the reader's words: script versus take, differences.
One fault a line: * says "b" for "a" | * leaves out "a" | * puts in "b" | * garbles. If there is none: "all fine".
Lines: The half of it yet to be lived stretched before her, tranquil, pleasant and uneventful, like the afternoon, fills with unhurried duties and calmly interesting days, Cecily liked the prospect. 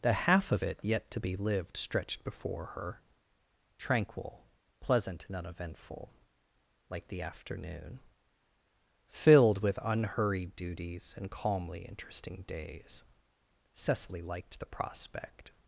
* says "filled" for "fills"